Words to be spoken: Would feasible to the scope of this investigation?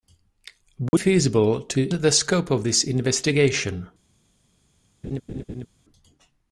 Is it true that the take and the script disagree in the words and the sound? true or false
true